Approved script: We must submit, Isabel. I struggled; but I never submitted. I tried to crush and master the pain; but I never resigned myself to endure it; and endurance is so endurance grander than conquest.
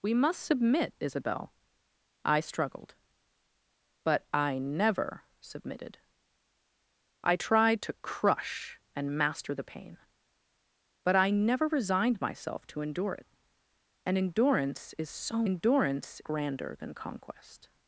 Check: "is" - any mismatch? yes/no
no